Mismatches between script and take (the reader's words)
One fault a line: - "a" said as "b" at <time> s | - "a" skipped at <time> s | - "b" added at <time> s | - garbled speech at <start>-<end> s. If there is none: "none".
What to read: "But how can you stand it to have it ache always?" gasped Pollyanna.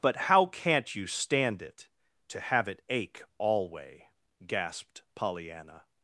- "can" said as "can't" at 0.5 s
- "always" said as "alway" at 3.4 s